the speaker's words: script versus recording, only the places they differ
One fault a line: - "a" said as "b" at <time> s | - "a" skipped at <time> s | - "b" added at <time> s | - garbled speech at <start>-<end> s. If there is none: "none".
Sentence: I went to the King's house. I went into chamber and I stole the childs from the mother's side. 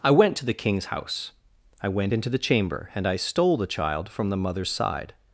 - "the" added at 2.3 s
- "childs" said as "child" at 3.7 s